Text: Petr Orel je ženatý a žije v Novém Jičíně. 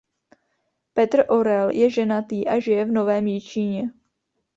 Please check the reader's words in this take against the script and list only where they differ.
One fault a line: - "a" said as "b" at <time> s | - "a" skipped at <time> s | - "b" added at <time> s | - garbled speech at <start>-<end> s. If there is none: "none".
none